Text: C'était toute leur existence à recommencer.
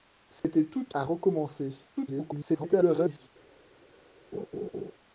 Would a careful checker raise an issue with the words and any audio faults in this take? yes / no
yes